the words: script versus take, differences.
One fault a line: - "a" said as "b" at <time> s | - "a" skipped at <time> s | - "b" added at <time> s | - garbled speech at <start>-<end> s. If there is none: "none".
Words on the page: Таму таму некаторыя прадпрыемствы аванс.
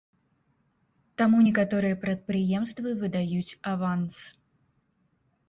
- "таму" skipped at 1.4 s
- "выдаюць" added at 3.0 s